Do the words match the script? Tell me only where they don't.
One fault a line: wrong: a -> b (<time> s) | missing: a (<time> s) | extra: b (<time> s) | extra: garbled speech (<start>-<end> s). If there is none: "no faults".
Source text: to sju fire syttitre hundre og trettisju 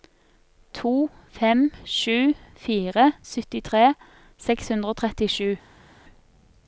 extra: fem (1.4 s)
extra: seks (4.5 s)